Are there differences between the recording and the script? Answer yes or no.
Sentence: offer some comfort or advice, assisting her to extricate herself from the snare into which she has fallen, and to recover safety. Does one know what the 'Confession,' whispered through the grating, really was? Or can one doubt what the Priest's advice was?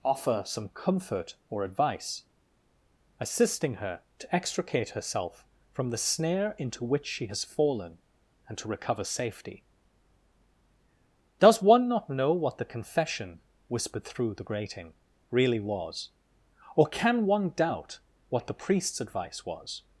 yes